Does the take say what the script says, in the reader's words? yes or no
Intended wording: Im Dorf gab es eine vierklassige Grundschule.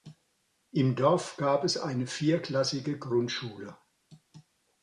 yes